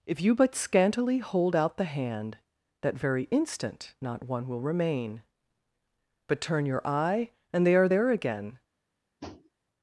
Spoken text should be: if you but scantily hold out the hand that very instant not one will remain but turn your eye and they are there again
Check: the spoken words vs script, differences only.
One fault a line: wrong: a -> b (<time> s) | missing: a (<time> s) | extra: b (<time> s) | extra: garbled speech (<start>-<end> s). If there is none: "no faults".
no faults